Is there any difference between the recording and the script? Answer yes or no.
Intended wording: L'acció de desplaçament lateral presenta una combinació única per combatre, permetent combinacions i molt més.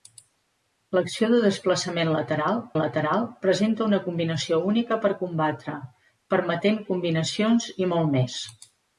yes